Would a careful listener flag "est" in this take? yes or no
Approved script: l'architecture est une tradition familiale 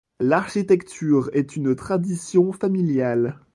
no